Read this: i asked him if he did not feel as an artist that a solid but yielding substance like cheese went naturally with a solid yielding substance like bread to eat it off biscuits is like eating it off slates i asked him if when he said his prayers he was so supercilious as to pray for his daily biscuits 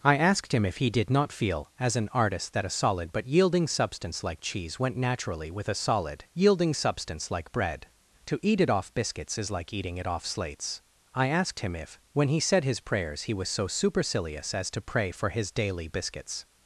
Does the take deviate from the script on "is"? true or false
false